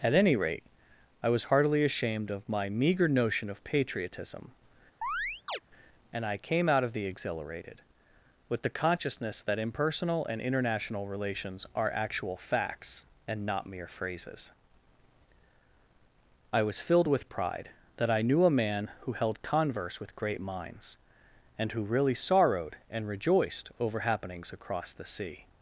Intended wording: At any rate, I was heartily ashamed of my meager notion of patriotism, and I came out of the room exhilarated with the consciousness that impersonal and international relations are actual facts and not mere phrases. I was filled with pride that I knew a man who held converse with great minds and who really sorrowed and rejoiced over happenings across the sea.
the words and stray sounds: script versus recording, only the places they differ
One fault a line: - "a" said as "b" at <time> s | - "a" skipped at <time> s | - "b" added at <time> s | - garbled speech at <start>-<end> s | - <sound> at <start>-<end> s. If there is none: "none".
- chirp at 5.0-5.6 s
- "room" skipped at 7.1 s